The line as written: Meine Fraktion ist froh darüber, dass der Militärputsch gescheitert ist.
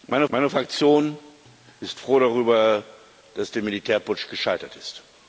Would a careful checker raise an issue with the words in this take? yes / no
yes